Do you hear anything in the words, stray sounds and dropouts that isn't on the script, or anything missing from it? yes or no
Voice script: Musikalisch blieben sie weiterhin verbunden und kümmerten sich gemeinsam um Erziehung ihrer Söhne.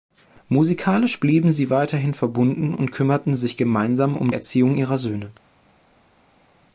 no